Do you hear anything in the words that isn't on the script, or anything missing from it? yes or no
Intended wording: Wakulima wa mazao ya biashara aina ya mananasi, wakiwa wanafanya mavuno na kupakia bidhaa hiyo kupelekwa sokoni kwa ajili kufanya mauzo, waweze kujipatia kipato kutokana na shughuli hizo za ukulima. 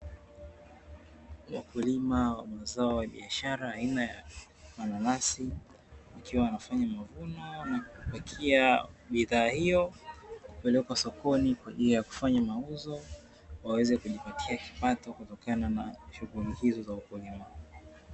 yes